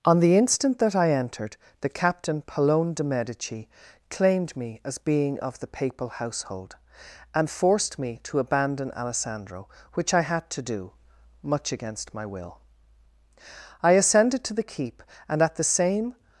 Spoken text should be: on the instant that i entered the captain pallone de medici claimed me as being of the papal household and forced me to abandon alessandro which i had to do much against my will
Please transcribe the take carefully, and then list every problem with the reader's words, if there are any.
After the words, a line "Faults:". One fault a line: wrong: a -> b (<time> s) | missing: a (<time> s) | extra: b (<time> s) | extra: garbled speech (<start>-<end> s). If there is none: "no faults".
on the instant that i entered the captain pallone de medici claimed me as being of the papal household and forced me to abandon alessandro which i had to do much against my will i ascended to the keep and at the same
Faults:
extra: i ascended to the keep and at the same (13.8 s)